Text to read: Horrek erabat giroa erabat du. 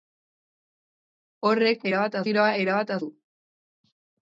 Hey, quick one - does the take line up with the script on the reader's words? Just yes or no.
yes